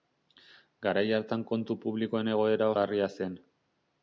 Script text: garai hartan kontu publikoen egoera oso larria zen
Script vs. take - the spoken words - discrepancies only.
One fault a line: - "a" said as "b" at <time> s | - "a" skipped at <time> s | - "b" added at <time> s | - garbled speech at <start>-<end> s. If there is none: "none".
- "oso" skipped at 2.7 s